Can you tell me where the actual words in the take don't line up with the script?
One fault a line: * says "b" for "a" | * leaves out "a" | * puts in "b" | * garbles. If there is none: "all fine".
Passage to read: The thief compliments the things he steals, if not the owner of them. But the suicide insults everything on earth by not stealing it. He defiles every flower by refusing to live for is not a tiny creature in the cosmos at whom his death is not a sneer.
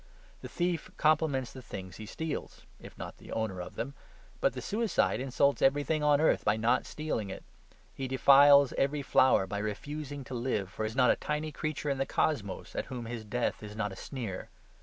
all fine